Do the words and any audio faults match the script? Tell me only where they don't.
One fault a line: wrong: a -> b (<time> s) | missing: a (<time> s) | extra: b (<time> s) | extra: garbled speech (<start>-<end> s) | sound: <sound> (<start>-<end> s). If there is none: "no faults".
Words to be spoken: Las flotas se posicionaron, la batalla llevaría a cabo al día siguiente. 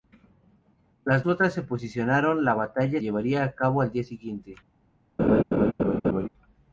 sound: laugh (5.2-6.3 s)